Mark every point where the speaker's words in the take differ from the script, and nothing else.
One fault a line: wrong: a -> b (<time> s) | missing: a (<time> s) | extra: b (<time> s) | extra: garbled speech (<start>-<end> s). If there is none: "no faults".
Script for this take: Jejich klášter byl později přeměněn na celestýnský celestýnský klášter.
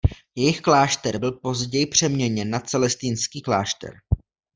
missing: celestýnský (3.4 s)